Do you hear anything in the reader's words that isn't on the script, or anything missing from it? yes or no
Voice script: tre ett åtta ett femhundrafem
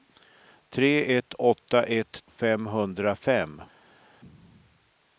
no